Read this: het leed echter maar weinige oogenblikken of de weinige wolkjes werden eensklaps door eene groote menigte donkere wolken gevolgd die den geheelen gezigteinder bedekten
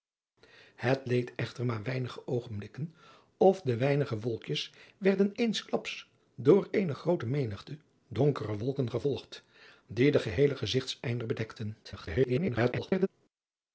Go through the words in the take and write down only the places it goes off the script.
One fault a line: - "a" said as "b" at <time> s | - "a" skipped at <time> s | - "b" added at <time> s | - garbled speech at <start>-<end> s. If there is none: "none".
- garbled speech at 11.8-13.1 s